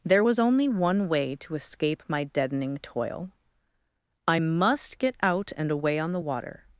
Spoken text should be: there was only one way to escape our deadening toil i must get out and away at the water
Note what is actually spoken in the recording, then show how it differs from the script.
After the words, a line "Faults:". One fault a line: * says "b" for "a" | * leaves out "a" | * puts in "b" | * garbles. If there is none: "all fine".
there was only one way to escape my deadening toil i must get out and away on the water
Faults:
* says "my" for "our"
* says "on" for "at"